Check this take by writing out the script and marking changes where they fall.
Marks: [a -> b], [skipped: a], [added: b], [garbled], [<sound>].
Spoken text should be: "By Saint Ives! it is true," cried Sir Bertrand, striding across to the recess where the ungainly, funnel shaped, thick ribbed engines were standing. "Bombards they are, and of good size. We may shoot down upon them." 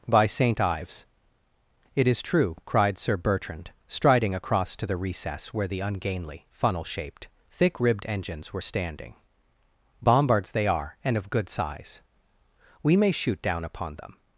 "By Saint Ives! it is true," cried Sir Bertrand, striding across to the recess where the ungainly, funnel shaped, thick ribbed engines were standing. "Bombards they are, and of good size. We may shoot down upon them."